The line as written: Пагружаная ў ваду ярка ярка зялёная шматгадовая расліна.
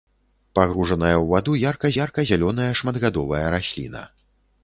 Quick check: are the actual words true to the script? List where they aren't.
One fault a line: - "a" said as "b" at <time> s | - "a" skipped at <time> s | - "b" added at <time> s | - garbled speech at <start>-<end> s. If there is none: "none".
none